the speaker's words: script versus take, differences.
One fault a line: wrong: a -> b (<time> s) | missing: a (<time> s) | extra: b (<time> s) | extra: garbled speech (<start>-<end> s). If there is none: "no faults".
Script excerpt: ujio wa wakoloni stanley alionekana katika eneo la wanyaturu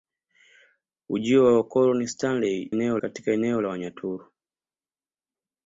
wrong: alionekana -> eneo (2.7 s)